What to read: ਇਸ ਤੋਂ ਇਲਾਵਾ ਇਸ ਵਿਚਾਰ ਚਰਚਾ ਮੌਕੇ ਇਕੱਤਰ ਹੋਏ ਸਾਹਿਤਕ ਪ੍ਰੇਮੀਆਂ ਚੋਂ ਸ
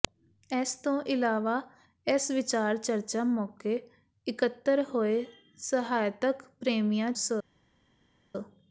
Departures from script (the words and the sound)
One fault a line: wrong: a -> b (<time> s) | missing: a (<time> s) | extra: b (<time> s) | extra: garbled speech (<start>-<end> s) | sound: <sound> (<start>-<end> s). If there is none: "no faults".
missing: ਚੋਂ (7.1 s)